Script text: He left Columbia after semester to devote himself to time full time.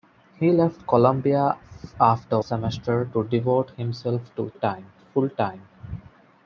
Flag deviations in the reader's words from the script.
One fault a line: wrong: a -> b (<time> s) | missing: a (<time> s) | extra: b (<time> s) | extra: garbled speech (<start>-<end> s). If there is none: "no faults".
no faults